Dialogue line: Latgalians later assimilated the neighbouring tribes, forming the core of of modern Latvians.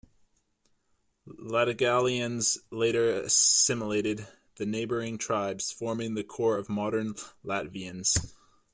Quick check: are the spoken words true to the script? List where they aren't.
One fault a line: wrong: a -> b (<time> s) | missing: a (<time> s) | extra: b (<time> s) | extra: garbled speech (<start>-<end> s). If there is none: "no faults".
missing: of (6.7 s)